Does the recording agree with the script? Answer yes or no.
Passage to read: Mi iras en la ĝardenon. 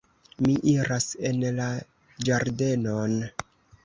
yes